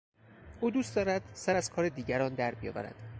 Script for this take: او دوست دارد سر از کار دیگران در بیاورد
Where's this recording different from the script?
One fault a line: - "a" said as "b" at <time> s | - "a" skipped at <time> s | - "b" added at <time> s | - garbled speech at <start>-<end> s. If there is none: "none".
none